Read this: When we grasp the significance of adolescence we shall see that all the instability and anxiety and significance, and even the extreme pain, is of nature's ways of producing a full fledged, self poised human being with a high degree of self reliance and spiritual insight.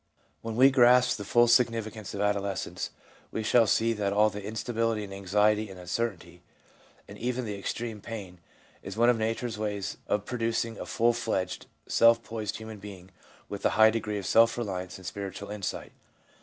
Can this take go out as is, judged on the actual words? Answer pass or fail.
fail